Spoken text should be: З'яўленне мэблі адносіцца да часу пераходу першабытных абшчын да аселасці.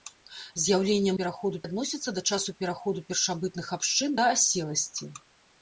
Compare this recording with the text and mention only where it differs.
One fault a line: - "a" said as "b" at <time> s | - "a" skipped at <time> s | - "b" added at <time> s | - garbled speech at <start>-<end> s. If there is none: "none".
- "мэблі" said as "пераходу" at 1.2 s